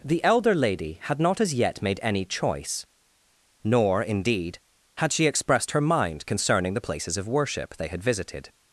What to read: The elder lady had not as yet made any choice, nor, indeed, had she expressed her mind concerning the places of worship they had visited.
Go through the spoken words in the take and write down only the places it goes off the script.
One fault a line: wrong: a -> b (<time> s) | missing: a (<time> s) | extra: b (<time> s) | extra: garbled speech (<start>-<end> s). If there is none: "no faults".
no faults